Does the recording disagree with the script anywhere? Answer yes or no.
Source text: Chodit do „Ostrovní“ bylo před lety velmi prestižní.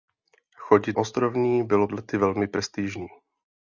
yes